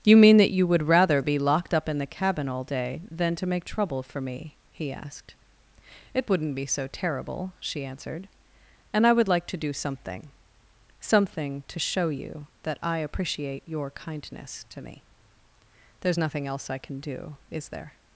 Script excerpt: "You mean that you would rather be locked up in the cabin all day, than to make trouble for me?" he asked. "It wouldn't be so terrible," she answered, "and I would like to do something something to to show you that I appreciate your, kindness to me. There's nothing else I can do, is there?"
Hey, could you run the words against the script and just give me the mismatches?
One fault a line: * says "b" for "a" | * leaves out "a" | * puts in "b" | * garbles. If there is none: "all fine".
* leaves out "to"